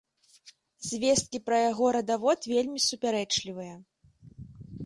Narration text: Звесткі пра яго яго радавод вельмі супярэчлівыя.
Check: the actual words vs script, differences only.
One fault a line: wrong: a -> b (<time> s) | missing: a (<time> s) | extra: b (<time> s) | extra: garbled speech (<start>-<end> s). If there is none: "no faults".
missing: яго (1.9 s)